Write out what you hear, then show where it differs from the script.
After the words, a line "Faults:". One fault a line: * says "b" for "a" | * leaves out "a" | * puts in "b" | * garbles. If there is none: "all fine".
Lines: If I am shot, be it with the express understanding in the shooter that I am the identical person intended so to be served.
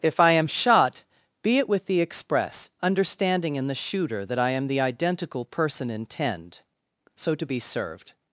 If I am shot, be it with the express understanding in the shooter that I am the identical person intend so to be served.
Faults:
* says "intend" for "intended"